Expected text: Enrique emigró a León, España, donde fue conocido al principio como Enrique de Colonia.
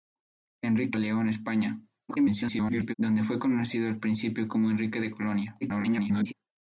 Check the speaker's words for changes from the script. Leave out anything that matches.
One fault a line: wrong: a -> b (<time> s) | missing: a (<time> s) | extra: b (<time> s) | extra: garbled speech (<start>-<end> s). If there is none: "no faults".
missing: emigró (1.0 s)
extra: garbled speech (2.1-2.9 s)
extra: garbled speech (5.6-6.3 s)